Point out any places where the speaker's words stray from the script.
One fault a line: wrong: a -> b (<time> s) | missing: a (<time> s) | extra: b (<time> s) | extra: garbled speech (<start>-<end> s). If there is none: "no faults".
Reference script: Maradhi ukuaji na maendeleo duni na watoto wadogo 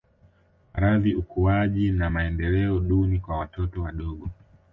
wrong: na -> kwa (3.2 s)